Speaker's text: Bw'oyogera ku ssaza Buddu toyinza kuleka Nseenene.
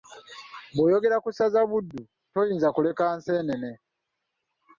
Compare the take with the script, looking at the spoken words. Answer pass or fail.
pass